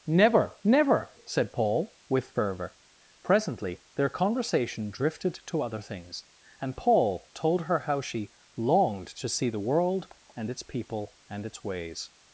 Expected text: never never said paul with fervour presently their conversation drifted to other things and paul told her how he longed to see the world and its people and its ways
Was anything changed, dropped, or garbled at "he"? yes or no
yes